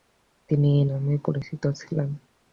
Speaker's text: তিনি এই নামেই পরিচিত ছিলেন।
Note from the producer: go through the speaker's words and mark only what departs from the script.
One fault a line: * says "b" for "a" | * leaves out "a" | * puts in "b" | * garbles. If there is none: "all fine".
all fine